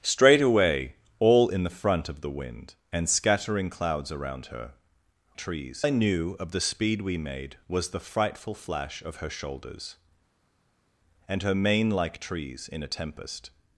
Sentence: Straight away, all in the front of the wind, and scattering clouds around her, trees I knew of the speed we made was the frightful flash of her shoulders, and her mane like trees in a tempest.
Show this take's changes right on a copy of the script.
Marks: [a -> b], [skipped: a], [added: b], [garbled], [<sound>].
Straight away, all in the front of the wind, and scattering clouds around her, trees I knew of the speed we made was the frightful flash of her shoulders, and her mane like trees in a tempest.